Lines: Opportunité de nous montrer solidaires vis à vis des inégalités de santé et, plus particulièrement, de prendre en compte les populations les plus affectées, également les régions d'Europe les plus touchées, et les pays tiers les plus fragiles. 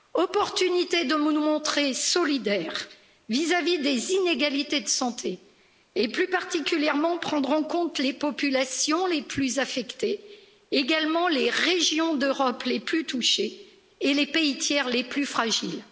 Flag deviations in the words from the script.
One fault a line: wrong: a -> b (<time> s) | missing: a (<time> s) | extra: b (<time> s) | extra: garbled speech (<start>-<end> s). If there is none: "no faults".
no faults